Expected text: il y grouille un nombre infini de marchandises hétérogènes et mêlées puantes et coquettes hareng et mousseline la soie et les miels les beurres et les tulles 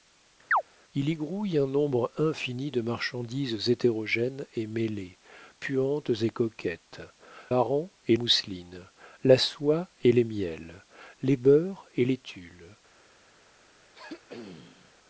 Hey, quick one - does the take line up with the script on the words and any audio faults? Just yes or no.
no